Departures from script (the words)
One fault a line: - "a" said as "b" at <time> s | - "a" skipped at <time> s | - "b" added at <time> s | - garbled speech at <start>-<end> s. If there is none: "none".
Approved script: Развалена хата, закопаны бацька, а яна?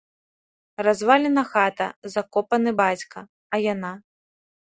none